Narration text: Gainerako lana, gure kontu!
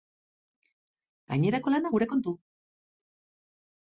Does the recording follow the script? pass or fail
pass